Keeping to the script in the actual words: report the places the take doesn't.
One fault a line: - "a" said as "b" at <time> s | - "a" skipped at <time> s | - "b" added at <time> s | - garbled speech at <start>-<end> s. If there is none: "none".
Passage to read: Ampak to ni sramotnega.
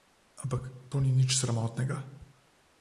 - "nič" added at 1.1 s